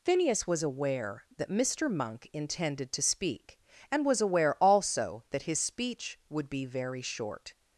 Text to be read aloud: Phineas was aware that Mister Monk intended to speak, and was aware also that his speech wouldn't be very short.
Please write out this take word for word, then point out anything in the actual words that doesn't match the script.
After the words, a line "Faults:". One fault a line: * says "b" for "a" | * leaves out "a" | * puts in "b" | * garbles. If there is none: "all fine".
Phineas was aware that Mister Monk intended to speak, and was aware also that his speech would be very short.
Faults:
* says "would" for "wouldn't"